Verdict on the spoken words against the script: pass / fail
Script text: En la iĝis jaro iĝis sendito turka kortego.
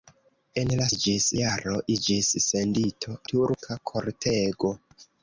pass